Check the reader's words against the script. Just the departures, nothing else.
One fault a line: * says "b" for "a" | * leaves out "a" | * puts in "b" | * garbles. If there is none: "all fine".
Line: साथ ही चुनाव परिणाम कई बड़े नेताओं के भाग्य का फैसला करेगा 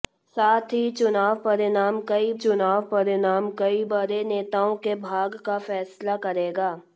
* puts in "चुनाव परिणाम कई"